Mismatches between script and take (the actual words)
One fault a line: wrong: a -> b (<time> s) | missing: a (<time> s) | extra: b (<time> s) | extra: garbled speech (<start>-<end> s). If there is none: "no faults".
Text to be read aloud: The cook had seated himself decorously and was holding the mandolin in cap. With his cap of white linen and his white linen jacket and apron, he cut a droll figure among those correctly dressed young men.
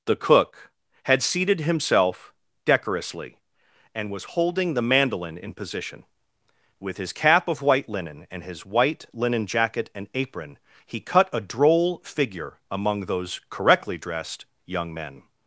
wrong: cap -> position (5.5 s)